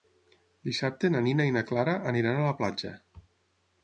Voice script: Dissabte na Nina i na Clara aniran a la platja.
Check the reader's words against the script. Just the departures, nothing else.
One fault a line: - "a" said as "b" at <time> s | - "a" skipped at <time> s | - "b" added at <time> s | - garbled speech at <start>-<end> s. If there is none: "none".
none